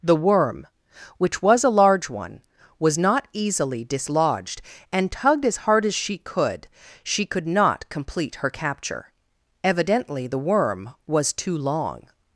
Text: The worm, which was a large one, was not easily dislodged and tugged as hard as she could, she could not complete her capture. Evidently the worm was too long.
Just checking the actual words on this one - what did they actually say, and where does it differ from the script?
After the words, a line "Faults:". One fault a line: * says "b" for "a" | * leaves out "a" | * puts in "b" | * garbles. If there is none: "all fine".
The worm, which was a large one, was not easily dislodged and tugged as hard as she could, she could not complete her capture. Evidently the worm was too long.
Faults:
all fine